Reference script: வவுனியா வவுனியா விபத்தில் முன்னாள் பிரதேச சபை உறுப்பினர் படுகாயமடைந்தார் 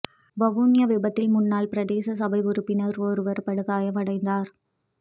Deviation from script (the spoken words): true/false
true